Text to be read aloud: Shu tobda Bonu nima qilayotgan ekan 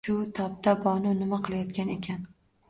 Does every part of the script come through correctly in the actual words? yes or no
yes